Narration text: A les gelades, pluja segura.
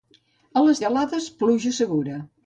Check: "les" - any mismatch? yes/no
no